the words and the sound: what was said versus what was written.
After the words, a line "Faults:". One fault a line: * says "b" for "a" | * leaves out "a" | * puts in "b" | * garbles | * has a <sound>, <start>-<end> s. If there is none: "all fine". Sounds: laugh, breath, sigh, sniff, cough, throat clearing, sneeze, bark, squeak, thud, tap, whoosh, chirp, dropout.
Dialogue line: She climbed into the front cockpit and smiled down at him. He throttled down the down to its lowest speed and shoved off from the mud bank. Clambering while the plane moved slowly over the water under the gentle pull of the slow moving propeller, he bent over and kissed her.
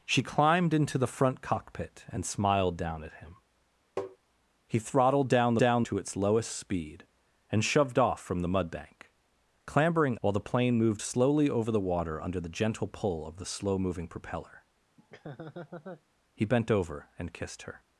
She climbed into the front cockpit and smiled down at him. He throttled down the down to its lowest speed and shoved off from the mud bank. Clambering while the plane moved slowly over the water under the gentle pull of the slow moving propeller, he bent over and kissed her.
Faults:
* has a tap, 4.0-4.2 s
* has a laugh, 15.0-16.0 s